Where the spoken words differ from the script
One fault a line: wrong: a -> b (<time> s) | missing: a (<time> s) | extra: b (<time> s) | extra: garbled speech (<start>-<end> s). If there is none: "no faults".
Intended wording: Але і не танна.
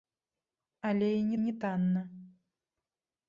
extra: не (1.4 s)